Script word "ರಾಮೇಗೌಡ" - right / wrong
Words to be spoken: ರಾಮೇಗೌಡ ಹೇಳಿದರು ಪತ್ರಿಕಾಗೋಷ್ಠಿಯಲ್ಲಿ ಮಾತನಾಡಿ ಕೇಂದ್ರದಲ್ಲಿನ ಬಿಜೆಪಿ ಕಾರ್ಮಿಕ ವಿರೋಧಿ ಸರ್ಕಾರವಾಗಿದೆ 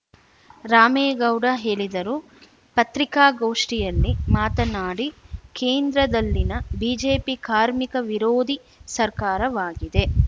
right